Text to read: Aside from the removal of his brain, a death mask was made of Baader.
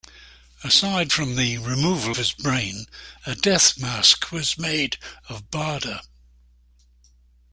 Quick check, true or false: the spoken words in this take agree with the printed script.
false